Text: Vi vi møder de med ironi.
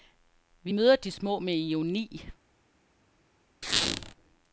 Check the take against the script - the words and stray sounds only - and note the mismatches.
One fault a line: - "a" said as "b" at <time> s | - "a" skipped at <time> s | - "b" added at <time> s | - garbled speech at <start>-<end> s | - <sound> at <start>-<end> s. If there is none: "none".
- "vi" skipped at 0.8 s
- "små" added at 1.1 s
- squeak at 3.6-4.1 s